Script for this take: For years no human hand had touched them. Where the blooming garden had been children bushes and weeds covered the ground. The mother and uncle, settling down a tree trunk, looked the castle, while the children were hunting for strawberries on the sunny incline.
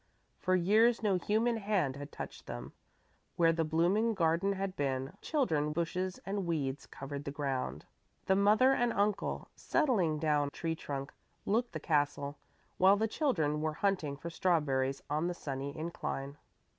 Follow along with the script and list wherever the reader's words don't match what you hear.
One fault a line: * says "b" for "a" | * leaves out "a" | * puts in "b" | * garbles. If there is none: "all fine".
all fine